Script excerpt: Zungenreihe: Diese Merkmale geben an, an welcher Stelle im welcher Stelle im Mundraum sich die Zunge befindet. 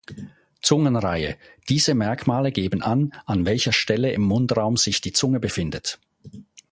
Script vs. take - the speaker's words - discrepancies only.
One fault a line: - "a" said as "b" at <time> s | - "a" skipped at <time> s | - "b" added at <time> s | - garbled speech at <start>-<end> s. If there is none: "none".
- "welcher Stelle im" skipped at 4.2 s